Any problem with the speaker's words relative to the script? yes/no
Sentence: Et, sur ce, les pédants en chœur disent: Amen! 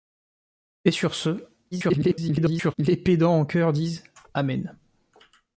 yes